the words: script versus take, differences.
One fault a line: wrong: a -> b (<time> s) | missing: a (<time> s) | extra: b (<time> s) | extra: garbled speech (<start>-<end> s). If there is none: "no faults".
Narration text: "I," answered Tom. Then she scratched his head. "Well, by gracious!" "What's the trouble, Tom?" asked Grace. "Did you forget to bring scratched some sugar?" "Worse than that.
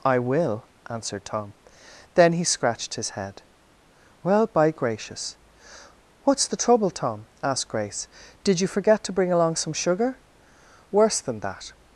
extra: will (0.2 s)
wrong: she -> he (2.3 s)
wrong: scratched -> along (9.3 s)